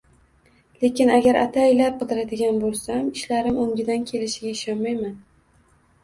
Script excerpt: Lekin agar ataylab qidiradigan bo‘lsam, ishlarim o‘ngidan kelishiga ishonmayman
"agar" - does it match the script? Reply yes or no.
yes